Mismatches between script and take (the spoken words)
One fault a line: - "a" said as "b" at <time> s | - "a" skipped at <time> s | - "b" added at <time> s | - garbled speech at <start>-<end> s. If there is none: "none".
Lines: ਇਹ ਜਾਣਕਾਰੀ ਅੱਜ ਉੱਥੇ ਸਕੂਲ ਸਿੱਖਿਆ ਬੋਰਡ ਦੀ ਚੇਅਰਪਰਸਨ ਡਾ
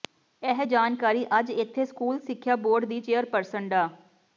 - "ਉੱਥੇ" said as "ਇੱਥੇ" at 1.5 s